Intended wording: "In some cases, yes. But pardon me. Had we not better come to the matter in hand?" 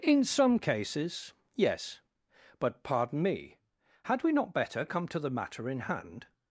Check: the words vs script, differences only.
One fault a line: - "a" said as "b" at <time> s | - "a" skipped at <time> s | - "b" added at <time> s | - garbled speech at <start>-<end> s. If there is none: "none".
none